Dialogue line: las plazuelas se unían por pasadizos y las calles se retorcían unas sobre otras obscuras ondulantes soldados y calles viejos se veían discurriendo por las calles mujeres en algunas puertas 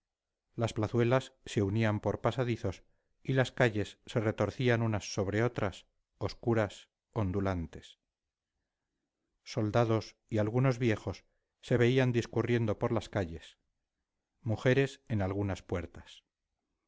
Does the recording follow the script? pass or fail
fail